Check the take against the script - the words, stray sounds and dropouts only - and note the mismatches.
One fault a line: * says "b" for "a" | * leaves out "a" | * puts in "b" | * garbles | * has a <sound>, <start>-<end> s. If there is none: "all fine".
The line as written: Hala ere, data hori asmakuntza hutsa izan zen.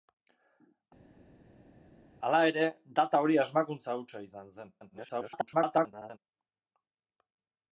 * garbles